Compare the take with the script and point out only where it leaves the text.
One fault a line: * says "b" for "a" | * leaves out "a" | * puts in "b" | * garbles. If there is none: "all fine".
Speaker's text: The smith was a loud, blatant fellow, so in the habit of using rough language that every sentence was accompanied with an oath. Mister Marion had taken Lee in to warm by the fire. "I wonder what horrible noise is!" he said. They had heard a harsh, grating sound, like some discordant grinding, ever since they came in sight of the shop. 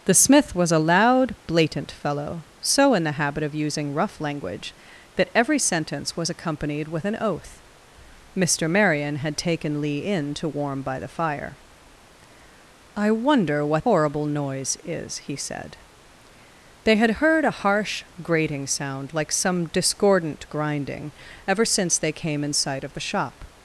all fine